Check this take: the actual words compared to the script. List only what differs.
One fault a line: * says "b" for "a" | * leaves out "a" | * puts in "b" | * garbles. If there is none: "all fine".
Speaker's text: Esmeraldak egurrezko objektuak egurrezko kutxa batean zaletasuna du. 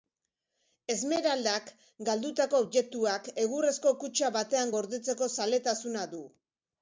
* says "galdutako" for "egurrezko"
* puts in "gordetzeko"